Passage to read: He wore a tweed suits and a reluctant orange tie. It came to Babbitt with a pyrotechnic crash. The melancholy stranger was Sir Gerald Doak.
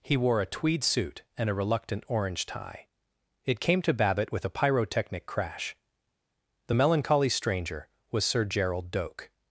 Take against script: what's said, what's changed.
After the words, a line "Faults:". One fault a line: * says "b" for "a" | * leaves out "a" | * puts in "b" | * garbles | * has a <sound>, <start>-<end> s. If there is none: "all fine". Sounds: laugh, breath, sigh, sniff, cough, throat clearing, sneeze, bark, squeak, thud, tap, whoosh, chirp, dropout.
He wore a tweed suit and a reluctant orange tie. It came to Babbitt with a pyrotechnic crash. The melancholy stranger was Sir Gerald Doak.
Faults:
* says "suit" for "suits"